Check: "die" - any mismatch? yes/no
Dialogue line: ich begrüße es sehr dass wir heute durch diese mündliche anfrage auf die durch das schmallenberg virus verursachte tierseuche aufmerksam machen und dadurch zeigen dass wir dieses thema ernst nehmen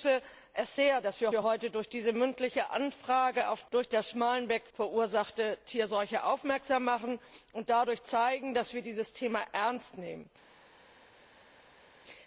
yes